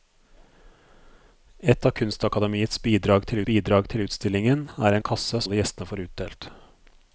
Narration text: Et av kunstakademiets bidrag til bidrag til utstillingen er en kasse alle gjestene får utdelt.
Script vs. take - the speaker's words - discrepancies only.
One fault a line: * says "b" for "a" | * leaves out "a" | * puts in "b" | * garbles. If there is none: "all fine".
all fine